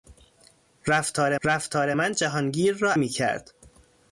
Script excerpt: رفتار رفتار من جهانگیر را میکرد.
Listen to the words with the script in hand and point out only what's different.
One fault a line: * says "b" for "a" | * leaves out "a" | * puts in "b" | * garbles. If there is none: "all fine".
all fine